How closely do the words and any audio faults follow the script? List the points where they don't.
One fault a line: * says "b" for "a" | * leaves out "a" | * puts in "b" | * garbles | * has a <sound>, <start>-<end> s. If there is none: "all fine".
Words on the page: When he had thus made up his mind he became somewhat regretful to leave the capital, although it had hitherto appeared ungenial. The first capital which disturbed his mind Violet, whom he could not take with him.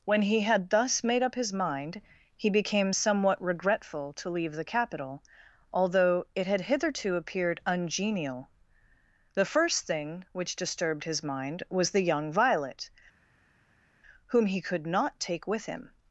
* says "thing" for "capital"
* puts in "was the young"